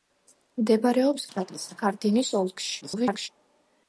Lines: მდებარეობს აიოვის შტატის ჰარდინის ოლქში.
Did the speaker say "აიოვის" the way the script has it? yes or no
no